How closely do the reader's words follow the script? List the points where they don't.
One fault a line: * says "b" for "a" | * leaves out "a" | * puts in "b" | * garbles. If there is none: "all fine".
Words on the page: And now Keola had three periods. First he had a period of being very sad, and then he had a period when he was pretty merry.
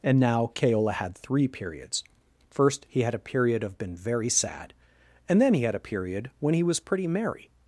* says "been" for "being"